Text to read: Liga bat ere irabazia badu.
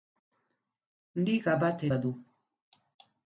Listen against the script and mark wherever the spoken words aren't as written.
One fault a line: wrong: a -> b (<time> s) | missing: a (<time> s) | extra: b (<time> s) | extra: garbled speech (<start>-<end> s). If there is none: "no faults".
missing: ere irabazia (1.9 s)